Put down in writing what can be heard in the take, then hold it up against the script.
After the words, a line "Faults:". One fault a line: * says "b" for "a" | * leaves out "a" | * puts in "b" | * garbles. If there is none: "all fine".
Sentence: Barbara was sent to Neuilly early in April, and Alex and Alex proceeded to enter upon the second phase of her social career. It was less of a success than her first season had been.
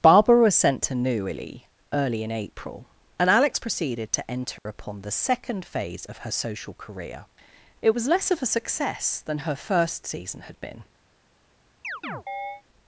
Barbara was sent to Neuilly early in April, and Alex proceeded to enter upon the second phase of her social career. It was less of a success than her first season had been.
Faults:
* leaves out "and Alex"